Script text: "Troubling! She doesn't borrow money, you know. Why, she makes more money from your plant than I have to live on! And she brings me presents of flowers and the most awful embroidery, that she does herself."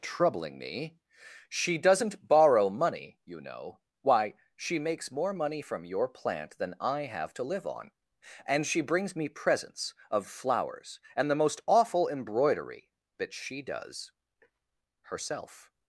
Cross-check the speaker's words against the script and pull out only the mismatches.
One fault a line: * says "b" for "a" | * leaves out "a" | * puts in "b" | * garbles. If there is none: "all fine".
* puts in "me"